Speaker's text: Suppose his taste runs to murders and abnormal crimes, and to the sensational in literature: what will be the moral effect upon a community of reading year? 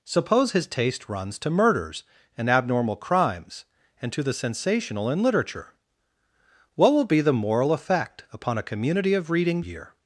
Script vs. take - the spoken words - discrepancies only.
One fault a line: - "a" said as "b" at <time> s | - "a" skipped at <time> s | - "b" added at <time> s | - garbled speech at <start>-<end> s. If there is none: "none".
none